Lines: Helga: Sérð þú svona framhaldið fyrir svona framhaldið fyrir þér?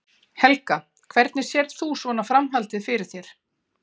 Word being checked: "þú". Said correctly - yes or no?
yes